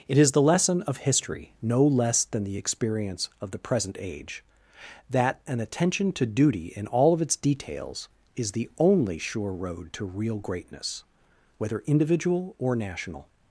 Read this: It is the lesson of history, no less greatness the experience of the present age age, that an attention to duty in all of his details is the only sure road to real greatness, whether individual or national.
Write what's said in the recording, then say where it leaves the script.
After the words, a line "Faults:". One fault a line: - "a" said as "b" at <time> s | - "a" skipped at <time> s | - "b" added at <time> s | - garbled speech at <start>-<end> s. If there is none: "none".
It is the lesson of history, no less than the experience of the present age, that an attention to duty in all of its details is the only sure road to real greatness, whether individual or national.
Faults:
- "greatness" said as "than" at 2.2 s
- "age" skipped at 4.4 s
- "his" said as "its" at 7.2 s